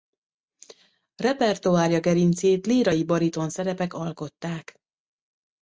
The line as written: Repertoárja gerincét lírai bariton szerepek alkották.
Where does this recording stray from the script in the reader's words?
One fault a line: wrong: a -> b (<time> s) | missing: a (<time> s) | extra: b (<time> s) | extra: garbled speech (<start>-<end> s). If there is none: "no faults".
no faults